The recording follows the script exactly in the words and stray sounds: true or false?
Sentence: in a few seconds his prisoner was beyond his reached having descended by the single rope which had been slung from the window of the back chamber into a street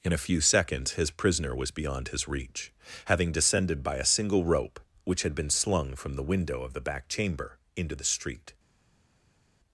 false